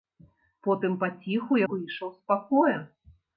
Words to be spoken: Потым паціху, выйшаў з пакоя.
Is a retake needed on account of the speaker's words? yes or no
no